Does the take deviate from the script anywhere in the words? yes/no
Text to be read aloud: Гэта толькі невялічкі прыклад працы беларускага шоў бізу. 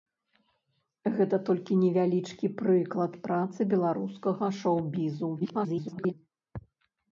yes